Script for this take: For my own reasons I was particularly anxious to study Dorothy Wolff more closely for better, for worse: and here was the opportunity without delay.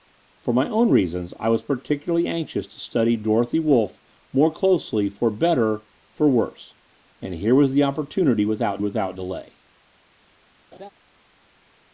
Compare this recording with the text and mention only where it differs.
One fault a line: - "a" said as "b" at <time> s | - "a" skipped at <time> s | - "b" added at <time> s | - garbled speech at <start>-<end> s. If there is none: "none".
- "without" added at 8.8 s